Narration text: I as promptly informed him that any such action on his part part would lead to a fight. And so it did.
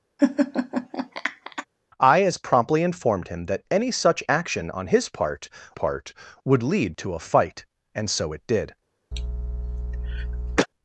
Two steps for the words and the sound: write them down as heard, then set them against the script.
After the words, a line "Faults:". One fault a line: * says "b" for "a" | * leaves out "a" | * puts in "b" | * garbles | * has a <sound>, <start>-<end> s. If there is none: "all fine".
I as promptly informed him that any such action on his part part would lead to a fight. And so it did.
Faults:
* has a laugh, 0.2-1.7 s
* has a cough, 9.1-10.7 s